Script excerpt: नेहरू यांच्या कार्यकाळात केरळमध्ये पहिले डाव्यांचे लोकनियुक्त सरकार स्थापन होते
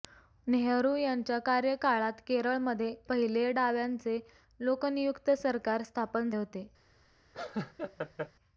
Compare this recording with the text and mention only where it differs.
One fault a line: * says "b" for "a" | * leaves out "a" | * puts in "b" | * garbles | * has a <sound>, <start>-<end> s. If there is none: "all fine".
* has a laugh, 7.3-8.3 s